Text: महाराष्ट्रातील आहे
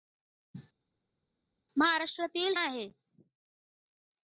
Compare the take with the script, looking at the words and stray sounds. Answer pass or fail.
pass